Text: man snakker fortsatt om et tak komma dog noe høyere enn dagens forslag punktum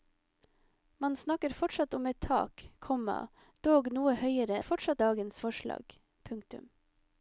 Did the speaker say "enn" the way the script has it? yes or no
no